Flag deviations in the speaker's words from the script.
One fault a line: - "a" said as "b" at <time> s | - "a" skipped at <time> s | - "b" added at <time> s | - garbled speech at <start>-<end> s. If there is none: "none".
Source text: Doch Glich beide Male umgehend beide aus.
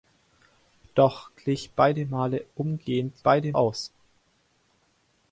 none